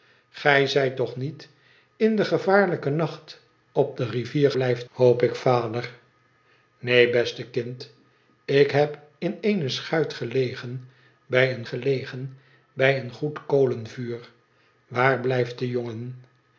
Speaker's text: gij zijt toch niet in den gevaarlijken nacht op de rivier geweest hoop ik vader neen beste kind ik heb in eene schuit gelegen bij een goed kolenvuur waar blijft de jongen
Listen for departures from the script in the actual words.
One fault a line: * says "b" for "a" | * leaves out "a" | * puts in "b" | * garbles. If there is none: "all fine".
* says "blijft" for "geweest"
* puts in "gelegen bij een"